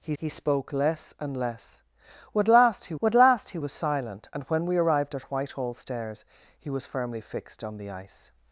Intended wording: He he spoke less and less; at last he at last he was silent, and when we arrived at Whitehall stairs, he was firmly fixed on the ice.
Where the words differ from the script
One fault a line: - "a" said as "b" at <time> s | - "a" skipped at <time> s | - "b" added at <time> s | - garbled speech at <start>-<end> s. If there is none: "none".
none